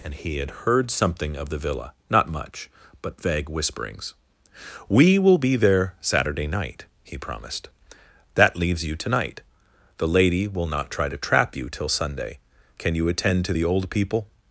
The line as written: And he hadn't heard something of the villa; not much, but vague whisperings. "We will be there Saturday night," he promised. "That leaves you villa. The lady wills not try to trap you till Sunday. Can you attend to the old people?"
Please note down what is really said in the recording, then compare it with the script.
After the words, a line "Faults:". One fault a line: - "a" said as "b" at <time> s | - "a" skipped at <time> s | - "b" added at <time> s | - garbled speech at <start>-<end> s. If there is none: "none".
And he had heard something of the villa; not much, but vague whisperings. "We will be there Saturday night," he promised. "That leaves you tonight. The lady will not try to trap you till Sunday. Can you attend to the old people?"
Faults:
- "hadn't" said as "had" at 0.4 s
- "villa" said as "tonight" at 9.0 s
- "wills" said as "will" at 10.5 s